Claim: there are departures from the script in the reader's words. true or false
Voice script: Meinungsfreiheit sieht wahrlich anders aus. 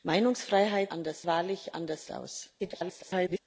true